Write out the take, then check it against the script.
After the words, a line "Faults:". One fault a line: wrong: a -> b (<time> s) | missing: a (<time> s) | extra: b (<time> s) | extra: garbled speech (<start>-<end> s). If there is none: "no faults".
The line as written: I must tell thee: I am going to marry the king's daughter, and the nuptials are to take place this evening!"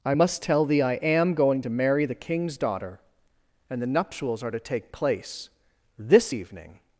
I must tell thee: I am going to marry the king's daughter, and the nuptials are to take place this evening!"
Faults:
no faults